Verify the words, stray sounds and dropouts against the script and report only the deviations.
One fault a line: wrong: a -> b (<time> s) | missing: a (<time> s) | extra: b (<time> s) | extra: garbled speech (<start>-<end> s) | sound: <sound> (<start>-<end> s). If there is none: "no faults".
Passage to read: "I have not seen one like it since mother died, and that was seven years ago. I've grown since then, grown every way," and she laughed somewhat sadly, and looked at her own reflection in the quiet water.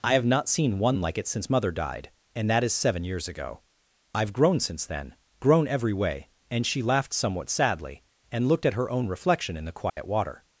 wrong: was -> is (2.6 s)
sound: dropout (9.9-10.0 s)